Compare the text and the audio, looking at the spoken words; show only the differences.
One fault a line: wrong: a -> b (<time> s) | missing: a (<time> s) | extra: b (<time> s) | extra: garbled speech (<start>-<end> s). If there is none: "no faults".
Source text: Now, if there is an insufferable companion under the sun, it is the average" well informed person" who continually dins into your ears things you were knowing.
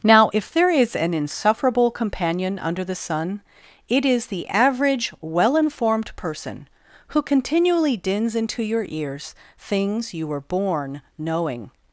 extra: born (10.4 s)